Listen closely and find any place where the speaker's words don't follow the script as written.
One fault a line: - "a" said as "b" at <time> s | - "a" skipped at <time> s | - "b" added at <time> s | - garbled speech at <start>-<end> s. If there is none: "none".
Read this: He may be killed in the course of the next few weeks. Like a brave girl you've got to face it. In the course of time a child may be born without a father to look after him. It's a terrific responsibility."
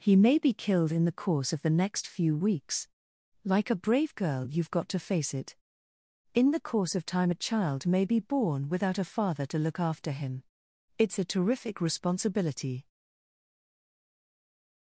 none